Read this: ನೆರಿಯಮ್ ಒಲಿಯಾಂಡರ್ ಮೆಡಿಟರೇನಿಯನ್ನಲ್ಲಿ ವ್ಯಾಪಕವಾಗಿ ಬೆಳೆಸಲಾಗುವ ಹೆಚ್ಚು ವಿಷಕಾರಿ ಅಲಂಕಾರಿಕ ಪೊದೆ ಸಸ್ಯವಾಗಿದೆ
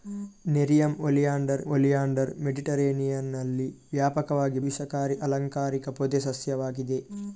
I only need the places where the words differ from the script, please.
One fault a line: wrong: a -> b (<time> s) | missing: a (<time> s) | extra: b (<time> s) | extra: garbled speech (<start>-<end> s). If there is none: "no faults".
extra: ಒಲಿಯಾಂಡರ್ (1.7 s)
missing: ಬೆಳೆಸಲಾಗುವ ಹೆಚ್ಚು (4.6 s)